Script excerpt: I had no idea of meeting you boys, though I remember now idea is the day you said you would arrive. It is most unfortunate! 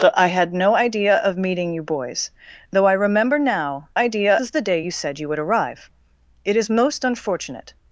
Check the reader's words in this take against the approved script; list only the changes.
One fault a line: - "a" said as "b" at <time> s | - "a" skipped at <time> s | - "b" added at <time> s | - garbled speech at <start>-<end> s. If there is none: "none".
none